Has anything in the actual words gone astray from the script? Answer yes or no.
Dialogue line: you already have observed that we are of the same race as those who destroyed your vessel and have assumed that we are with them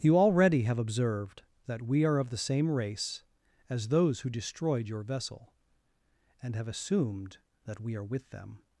no